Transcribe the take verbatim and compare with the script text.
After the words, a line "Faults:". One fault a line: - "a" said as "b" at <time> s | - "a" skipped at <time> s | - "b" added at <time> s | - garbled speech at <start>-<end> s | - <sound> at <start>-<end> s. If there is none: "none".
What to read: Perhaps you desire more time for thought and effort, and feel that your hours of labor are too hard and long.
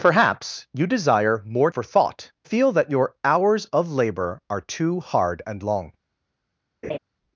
Perhaps you desire more for thought feel that your hours of labor are too hard and long.
Faults:
- "time" skipped at 1.7 s
- "and effort and" skipped at 2.3 s
- laugh at 6.8-7.0 s